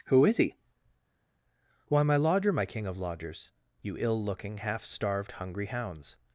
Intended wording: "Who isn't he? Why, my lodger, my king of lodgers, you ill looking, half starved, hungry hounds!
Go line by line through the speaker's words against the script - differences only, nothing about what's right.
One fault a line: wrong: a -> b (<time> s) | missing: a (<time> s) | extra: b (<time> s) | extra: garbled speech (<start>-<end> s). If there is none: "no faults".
wrong: isn't -> is (0.2 s)